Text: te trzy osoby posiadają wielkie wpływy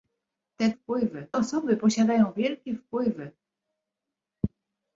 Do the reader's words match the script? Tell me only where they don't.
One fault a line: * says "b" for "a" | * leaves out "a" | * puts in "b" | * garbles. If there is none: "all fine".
* says "wpływy" for "trzy"